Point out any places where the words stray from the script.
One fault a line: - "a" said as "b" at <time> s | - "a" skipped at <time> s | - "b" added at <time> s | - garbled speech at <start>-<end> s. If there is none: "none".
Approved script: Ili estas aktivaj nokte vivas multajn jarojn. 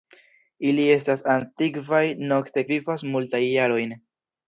none